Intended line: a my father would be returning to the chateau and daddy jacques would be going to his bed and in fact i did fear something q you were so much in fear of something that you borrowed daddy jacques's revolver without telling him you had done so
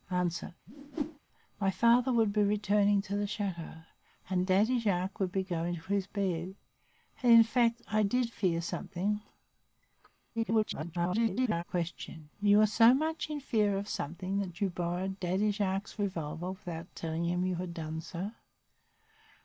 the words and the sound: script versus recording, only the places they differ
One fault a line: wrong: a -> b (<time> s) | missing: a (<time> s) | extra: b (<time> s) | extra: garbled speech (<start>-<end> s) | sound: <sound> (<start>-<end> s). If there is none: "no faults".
sound: whoosh (0.7-1.2 s)
extra: garbled speech (10.4-11.6 s)